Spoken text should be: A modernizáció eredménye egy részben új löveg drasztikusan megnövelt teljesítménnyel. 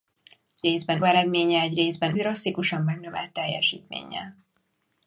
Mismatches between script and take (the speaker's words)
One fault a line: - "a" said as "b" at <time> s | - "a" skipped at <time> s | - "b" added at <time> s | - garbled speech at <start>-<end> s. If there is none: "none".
- "modernizáció" said as "részben" at 0.6 s
- "új löveg" skipped at 2.2 s